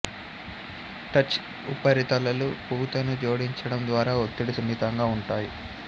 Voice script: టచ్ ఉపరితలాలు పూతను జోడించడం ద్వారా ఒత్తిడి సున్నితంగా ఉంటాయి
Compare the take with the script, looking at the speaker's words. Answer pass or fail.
pass